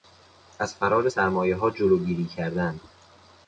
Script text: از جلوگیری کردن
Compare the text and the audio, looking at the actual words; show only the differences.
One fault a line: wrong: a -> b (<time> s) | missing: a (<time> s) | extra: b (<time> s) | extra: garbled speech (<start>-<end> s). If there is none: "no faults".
extra: فرار سرمایهها (0.8 s)